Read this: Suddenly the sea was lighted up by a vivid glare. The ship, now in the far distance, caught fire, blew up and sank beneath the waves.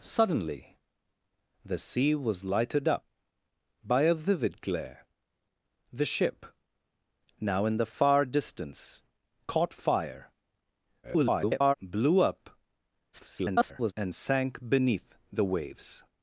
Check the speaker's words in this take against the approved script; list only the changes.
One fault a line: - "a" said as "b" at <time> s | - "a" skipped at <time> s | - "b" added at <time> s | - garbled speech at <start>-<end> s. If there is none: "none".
- garbled speech at 11.0-11.7 s
- garbled speech at 13.1-13.9 s